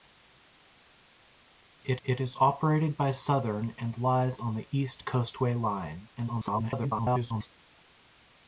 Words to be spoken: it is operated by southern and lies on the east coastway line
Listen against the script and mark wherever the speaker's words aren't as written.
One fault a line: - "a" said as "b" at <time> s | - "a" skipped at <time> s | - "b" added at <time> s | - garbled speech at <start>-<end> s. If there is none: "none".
- "it" added at 2.0 s
- garbled speech at 6.2-7.5 s